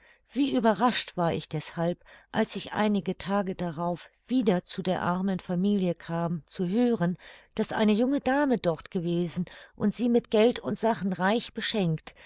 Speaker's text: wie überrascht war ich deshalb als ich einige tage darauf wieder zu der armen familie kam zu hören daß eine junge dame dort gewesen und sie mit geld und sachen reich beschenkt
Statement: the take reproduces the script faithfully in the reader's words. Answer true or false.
true